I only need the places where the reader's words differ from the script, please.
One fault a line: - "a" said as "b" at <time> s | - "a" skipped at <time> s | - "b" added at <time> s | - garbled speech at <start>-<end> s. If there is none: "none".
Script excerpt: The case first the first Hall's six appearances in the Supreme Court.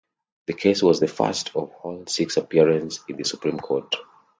- "first" said as "was" at 0.8 s
- "of" added at 1.6 s